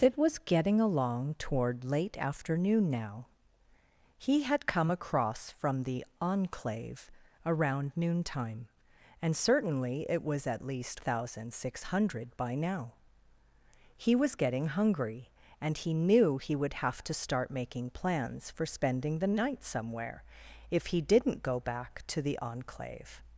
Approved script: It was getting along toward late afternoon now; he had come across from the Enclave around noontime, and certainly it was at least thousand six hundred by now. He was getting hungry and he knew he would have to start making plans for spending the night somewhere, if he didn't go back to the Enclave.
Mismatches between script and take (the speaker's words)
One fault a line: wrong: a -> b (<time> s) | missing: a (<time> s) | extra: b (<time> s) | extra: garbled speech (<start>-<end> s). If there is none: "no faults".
no faults